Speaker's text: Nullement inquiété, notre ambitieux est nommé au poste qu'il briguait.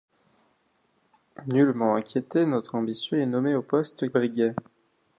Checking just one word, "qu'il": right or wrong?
wrong